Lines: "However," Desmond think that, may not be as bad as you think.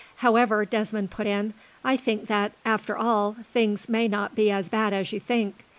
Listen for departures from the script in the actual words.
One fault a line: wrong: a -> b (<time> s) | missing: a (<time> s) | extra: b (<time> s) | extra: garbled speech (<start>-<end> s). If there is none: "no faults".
extra: put in I (1.1 s)
extra: after all things (2.6 s)